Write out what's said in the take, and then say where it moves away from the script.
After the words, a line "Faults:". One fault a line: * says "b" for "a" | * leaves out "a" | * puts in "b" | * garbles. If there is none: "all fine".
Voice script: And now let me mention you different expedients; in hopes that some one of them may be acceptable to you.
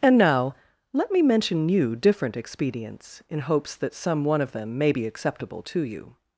And now let me mention you different expedients; in hopes that some one of them may be acceptable to you.
Faults:
all fine